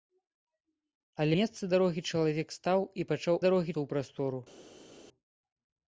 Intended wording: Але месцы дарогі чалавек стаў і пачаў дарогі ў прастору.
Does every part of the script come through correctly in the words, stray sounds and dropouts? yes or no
yes